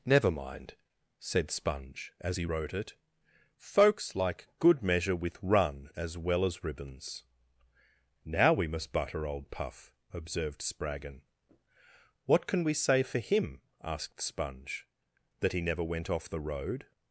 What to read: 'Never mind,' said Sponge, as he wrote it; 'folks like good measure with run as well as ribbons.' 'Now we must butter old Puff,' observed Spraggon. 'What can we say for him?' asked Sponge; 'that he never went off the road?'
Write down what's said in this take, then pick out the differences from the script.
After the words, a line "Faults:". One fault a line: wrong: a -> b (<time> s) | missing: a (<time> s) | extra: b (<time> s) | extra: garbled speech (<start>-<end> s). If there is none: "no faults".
'Never mind,' said Sponge, as he wrote it; 'folks like good measure with run as well as ribbons.' 'Now we must butter old Puff,' observed Spraggon. 'What can we say for him?' asked Sponge; 'that he never went off the road?'
Faults:
no faults